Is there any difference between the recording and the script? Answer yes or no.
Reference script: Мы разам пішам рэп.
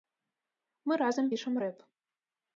no